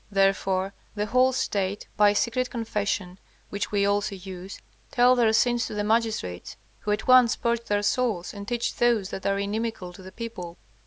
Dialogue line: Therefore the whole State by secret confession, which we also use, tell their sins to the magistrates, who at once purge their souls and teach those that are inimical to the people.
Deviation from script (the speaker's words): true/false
false